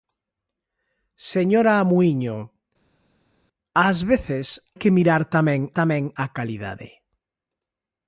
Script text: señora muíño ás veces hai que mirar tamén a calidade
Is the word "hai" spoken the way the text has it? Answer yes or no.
no